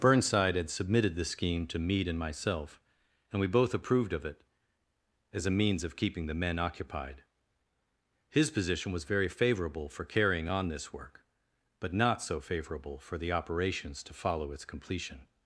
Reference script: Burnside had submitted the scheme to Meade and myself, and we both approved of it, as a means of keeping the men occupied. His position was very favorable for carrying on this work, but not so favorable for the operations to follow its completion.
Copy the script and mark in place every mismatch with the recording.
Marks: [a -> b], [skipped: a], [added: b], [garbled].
Burnside had submitted the scheme to Meade and myself, and we both approved of it, as a means of keeping the men occupied. His position was very favorable for carrying on this work, but not so favorable for the operations to follow its completion.